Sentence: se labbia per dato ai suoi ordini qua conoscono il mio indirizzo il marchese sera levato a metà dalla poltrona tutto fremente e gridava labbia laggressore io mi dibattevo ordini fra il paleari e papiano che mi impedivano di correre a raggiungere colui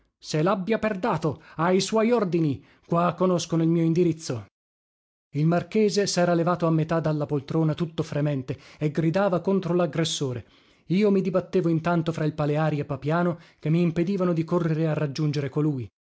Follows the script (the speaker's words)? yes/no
no